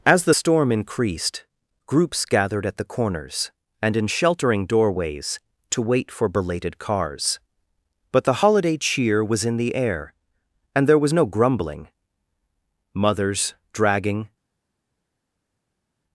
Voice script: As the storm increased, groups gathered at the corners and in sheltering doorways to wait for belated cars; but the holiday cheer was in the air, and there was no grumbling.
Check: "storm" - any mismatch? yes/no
no